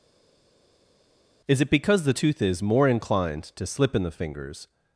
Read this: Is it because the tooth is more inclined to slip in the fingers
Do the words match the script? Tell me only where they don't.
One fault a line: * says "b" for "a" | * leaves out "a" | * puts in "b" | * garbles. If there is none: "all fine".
all fine